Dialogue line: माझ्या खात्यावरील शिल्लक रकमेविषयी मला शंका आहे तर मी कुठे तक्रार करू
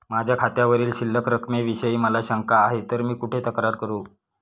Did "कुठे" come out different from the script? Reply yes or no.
no